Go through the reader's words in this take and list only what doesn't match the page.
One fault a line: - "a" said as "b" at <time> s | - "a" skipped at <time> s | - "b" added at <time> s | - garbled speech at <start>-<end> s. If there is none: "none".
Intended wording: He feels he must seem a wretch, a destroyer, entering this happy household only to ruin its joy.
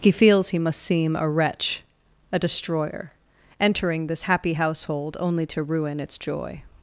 none